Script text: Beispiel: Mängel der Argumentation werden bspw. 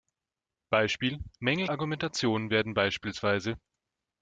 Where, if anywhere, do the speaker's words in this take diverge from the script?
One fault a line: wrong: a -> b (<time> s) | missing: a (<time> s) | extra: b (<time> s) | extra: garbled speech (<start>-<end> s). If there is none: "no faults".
missing: der (1.7 s)